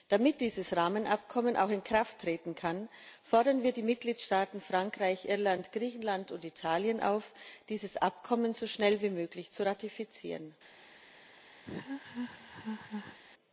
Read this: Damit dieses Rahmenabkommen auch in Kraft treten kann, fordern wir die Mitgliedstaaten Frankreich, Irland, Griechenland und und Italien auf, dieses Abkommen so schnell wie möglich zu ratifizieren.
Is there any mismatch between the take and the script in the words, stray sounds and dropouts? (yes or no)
yes